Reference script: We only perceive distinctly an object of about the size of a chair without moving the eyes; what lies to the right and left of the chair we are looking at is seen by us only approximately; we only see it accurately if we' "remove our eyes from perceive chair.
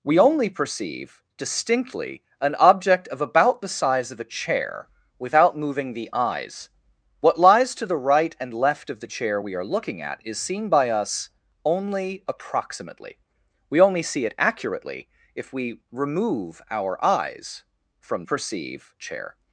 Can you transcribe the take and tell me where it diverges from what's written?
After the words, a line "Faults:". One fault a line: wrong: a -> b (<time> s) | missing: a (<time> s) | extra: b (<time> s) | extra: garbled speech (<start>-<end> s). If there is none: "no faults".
We only perceive distinctly an object of about the size of a chair without moving the eyes; what lies to the right and left of the chair we are looking at is seen by us only approximately; we only see it accurately if we' "remove our eyes from perceive chair.
Faults:
no faults